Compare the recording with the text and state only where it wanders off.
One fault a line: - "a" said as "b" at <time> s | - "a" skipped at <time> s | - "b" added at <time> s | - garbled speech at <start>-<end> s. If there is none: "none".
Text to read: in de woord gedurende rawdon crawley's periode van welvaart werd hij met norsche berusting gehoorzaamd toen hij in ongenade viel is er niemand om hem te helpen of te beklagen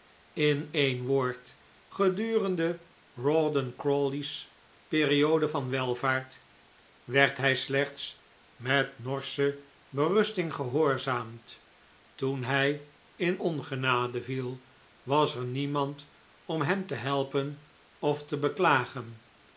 - "de" said as "een" at 0.7 s
- "slechts" added at 7.5 s
- "is" said as "was" at 15.0 s